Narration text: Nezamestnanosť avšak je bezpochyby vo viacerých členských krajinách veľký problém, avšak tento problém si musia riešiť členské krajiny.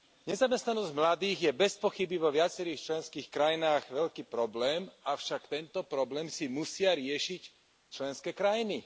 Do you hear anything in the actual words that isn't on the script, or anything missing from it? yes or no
yes